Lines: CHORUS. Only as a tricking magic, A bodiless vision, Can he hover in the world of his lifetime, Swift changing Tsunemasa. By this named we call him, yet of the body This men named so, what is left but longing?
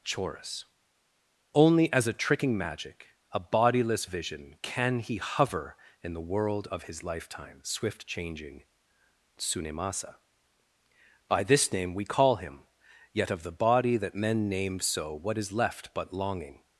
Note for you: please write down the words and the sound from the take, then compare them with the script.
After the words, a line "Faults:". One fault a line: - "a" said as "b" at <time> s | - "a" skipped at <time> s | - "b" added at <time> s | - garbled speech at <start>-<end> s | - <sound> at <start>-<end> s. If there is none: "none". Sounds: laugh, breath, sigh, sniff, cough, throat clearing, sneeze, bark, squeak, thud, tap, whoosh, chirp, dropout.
CHORUS. Only as a tricking magic, A bodiless vision, Can he hover in the world of his lifetime, Swift changing Tsunemasa. By this name we call him, yet of the body That men named so, what is left but longing?
Faults:
- "named" said as "name" at 11.7 s
- "This" said as "That" at 14.0 s